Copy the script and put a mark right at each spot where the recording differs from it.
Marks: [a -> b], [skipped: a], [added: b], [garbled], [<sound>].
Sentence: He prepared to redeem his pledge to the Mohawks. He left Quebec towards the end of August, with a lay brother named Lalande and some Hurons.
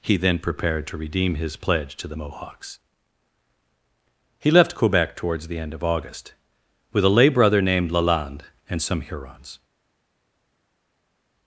He [added: then] prepared to redeem his pledge to the Mohawks. He left Quebec towards the end of August, with a lay brother named Lalande and some Hurons.